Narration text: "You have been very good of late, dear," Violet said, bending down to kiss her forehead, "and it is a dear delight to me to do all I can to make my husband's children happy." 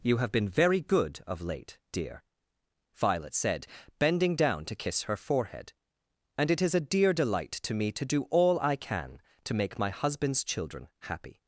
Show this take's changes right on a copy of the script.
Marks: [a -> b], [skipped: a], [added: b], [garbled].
"You have been very good of late, dear," Violet said, bending down to kiss her forehead, "and it is a dear delight to me to do all I can to make my husband's children happy."